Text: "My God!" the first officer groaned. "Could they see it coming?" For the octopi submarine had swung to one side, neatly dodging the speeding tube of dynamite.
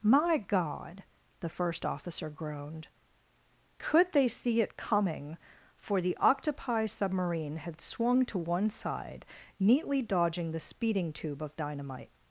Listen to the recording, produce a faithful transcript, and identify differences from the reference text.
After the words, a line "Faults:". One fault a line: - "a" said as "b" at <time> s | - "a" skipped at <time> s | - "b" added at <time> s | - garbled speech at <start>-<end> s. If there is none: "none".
"My God!" the first officer groaned. "Could they see it coming?" For the octopi submarine had swung to one side, neatly dodging the speeding tube of dynamite.
Faults:
none